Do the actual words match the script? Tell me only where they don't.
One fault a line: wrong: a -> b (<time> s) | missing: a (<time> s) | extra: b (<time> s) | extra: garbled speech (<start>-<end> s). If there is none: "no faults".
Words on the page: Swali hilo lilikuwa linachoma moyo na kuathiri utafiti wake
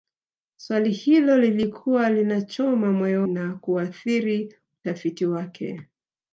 no faults